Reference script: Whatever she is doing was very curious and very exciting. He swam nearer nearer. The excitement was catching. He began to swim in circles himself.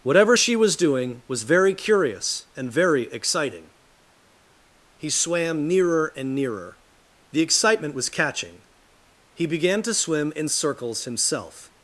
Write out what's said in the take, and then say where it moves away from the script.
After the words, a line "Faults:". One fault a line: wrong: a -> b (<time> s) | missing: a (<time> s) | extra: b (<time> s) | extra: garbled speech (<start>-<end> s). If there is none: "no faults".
Whatever she was doing was very curious and very exciting. He swam nearer and nearer. The excitement was catching. He began to swim in circles himself.
Faults:
wrong: is -> was (0.5 s)
extra: and (6.2 s)